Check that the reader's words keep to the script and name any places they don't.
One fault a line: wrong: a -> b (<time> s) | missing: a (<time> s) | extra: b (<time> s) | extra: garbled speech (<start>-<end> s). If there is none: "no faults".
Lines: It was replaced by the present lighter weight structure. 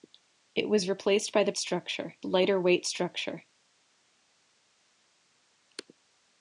wrong: present -> structure (1.6 s)